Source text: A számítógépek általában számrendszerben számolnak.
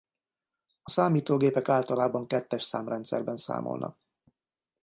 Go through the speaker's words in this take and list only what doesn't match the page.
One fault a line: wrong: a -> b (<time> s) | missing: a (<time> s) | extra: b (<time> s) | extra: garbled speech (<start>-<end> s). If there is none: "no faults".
extra: kettes (2.3 s)